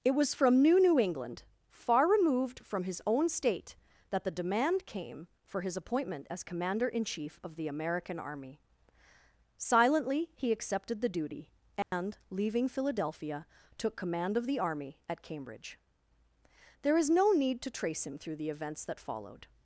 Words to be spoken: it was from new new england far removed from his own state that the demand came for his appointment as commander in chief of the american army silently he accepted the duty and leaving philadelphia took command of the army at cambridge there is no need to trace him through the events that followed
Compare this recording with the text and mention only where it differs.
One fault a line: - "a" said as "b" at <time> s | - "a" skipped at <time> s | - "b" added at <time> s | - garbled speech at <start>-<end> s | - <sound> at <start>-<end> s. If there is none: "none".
- dropout at 11.8-11.9 s